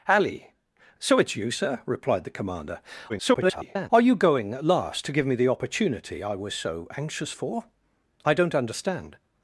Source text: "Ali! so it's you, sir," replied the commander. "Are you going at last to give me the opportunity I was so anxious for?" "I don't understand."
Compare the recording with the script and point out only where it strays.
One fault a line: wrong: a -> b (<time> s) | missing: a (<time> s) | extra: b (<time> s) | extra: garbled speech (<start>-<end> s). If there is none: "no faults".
extra: garbled speech (3.1-3.9 s)